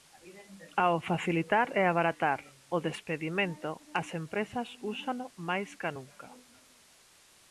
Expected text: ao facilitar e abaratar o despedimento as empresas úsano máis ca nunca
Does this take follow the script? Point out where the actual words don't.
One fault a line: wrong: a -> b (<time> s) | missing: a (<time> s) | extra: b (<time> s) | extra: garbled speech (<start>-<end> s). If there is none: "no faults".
no faults